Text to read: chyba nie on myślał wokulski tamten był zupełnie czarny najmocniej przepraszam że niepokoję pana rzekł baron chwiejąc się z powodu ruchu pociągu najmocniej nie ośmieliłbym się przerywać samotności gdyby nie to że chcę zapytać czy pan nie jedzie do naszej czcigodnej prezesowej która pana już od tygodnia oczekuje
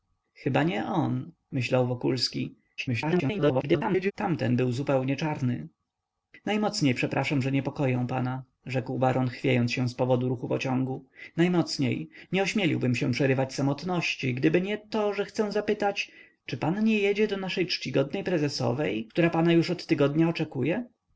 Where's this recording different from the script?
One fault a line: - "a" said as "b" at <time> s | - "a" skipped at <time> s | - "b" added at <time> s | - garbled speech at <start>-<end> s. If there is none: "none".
- garbled speech at 2.8-4.1 s